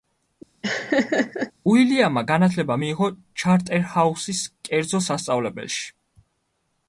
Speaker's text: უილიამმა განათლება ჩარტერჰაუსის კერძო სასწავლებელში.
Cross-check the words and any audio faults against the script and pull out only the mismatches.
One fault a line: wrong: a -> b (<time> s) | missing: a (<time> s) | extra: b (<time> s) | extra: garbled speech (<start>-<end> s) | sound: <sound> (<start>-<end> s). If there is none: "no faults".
sound: laugh (0.6-1.5 s)
extra: მიიღო (2.8 s)